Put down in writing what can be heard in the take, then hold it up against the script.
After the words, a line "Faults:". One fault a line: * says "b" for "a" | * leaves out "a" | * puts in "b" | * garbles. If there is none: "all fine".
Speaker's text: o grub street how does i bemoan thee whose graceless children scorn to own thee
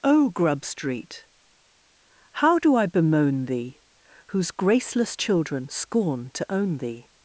o grub street how do i bemoan thee whose graceless children scorn to own thee
Faults:
* says "do" for "does"